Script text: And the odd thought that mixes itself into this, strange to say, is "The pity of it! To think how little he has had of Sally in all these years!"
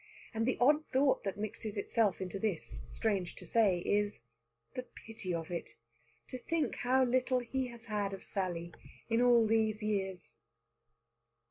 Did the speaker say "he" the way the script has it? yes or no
yes